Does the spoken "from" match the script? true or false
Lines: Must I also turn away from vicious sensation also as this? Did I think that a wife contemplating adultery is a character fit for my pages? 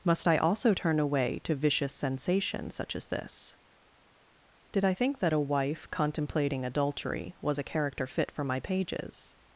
false